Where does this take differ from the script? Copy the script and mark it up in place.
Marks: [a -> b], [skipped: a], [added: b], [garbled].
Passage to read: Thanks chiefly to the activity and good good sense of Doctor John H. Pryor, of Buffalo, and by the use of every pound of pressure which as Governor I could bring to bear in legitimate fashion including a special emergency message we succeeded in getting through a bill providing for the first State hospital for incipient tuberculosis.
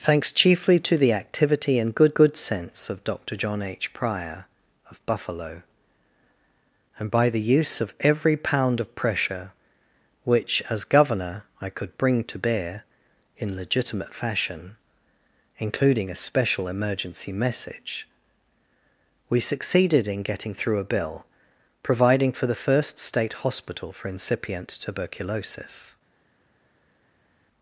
Thanks chiefly to the activity and good good sense of Doctor John H. Pryor, of Buffalo, and by the use of every pound of pressure which as Governor I could bring to bear in legitimate fashion including a special emergency message we succeeded in getting through a bill providing for the first State hospital for incipient tuberculosis.